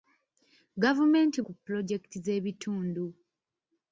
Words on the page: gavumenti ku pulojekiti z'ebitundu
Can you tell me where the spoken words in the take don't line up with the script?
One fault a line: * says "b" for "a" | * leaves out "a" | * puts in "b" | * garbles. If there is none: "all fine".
all fine